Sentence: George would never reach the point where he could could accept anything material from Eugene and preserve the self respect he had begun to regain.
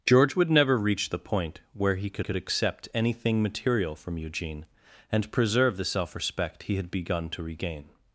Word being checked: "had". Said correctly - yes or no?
yes